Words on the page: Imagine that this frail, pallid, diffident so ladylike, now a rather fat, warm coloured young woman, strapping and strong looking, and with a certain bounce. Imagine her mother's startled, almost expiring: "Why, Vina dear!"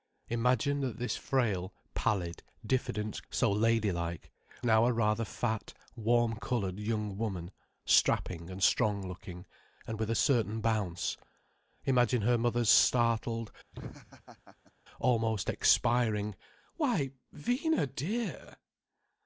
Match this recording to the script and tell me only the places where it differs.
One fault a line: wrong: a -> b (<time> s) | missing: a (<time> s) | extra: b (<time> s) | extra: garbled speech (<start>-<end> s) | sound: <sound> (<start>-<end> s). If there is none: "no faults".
sound: laugh (13.7-14.7 s)